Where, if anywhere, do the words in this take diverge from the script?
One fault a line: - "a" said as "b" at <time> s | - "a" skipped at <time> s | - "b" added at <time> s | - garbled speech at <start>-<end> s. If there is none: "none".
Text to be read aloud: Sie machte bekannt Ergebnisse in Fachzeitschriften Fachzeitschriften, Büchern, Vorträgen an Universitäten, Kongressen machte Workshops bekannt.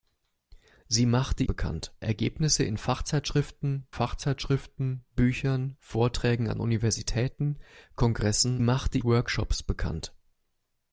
none